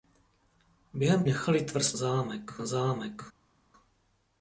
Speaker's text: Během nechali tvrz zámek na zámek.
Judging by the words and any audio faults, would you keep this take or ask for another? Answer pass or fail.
pass